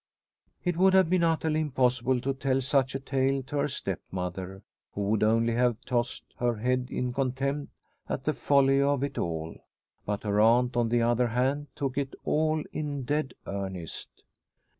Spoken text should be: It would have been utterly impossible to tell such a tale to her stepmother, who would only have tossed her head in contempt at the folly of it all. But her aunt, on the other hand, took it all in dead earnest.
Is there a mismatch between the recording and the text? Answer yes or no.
no